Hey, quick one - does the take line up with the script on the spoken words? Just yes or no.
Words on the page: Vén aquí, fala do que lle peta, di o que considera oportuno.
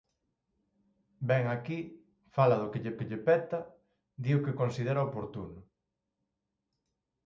no